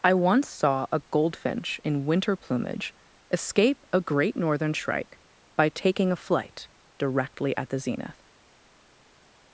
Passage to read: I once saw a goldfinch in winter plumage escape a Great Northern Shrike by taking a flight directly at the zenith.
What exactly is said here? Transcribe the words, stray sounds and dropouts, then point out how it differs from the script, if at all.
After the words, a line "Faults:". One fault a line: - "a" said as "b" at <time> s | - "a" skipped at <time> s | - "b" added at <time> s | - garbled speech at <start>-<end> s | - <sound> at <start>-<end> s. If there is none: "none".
I once saw a goldfinch in winter plumage escape a Great Northern Shrike by taking a flight directly at the zenith.
Faults:
none